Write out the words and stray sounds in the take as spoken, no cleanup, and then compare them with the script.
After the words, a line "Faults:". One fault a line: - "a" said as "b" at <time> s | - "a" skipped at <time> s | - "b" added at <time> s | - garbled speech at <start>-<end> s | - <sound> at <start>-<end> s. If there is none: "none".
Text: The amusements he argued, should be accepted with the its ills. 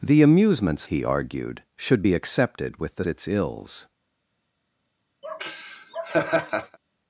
The amusements he argued, should be accepted with the its ills.
Faults:
- laugh at 5.2-6.8 s